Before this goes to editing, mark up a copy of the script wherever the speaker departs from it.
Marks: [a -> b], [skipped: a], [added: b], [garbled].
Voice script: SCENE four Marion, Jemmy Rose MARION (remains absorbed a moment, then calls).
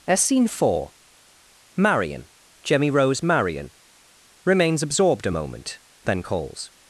SCENE four Marion, Jemmy Rose MARION (remains absorbed a moment, then calls).